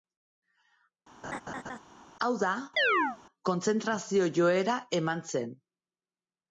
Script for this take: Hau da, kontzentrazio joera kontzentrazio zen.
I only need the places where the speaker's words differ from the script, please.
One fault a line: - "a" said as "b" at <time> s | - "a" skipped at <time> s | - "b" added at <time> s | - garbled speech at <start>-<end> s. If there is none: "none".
- "kontzentrazio" said as "eman" at 5.0 s